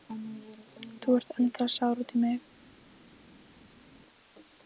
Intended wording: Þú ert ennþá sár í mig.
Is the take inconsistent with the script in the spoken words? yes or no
yes